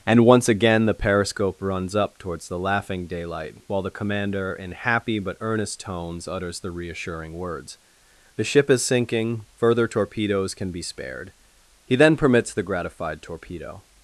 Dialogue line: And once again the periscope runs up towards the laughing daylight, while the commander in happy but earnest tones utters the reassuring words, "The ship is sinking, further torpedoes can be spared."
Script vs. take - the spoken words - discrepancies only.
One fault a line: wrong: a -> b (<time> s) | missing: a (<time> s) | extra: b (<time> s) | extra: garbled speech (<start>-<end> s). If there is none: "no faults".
extra: He then permits the gratified torpedo (11.8 s)